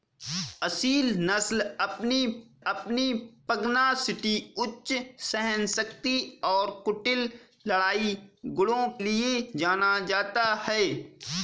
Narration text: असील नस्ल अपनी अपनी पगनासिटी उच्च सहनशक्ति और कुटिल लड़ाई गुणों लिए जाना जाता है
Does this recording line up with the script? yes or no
yes